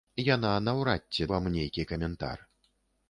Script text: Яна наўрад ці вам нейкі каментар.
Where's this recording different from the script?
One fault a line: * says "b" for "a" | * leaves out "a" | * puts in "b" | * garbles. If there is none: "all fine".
all fine